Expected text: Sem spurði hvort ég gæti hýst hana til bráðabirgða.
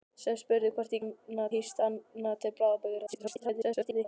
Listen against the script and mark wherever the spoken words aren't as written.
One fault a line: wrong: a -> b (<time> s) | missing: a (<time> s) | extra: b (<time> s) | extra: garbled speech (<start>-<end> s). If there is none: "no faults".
wrong: gæti -> hana (1.0 s)
extra: garbled speech (3.1-4.1 s)